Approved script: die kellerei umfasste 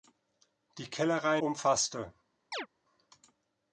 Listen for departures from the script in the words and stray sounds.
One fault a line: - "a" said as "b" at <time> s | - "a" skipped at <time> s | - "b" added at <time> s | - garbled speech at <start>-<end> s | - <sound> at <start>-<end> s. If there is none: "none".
- chirp at 2.5-2.7 s